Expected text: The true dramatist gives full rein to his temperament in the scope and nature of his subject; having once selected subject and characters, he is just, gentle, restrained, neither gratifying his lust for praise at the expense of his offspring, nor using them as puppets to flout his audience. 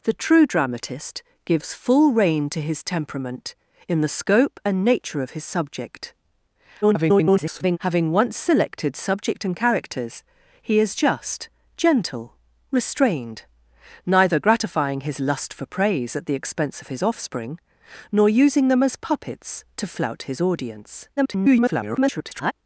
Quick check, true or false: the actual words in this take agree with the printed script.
false